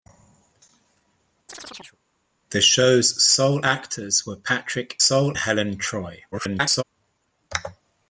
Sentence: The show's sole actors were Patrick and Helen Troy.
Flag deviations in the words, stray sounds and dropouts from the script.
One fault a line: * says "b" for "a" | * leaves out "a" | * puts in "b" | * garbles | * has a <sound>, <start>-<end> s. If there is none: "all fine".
* has a chirp, 1.5-2.0 s
* says "sole" for "and"
* garbles